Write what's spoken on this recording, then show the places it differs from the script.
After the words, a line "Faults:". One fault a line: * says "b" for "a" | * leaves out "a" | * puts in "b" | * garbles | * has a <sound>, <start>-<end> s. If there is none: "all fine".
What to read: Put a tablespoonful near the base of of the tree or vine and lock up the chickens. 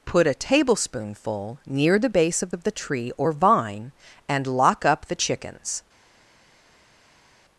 Put a tablespoonful near the base of of the tree or vine and lock up the chickens.
Faults:
all fine